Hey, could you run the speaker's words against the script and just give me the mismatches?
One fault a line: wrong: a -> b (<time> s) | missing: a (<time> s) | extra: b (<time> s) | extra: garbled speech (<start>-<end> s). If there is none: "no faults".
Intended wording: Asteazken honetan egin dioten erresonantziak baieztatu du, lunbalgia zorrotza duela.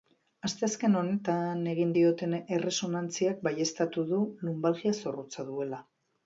no faults